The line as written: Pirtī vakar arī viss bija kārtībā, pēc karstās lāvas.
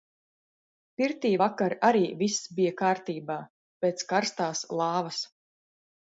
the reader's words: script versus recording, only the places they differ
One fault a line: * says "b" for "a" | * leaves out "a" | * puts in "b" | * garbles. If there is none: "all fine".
all fine